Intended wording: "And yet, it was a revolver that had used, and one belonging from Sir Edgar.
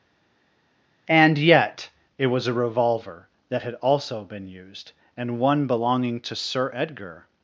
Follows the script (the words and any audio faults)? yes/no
no